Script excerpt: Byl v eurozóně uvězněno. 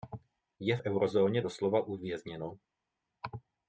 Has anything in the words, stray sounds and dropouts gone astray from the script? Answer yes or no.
yes